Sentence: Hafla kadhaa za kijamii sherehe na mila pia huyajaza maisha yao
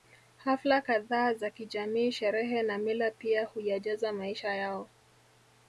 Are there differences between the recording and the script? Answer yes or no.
no